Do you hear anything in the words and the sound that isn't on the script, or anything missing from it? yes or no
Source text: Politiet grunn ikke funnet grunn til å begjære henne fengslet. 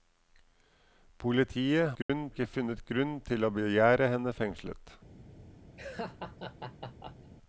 yes